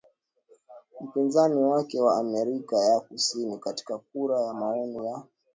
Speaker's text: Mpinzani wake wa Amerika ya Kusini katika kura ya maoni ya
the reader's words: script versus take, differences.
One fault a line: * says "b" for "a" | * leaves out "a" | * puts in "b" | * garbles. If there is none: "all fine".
all fine